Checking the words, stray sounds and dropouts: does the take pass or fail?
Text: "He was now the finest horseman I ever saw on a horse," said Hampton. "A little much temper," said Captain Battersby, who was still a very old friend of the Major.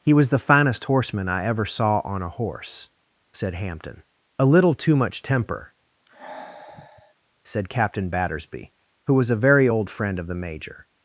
fail